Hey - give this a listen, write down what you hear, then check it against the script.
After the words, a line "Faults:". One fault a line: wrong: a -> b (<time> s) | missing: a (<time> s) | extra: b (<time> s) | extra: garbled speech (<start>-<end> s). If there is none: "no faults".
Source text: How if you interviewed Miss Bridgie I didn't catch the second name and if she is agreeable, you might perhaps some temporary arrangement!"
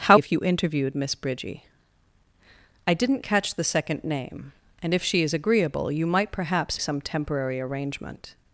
How if you interviewed Miss Bridgie I didn't catch the second name and if she is agreeable, you might perhaps some temporary arrangement!"
Faults:
no faults